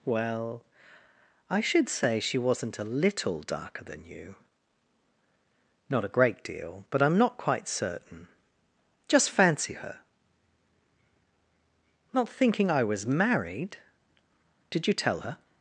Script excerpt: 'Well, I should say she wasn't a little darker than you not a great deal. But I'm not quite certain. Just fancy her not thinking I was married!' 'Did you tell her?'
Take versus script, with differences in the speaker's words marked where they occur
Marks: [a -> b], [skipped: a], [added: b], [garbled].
'Well, I should say she wasn't a little darker than you not a great deal. But I'm not quite certain. Just fancy her not thinking I was married!' 'Did you tell her?'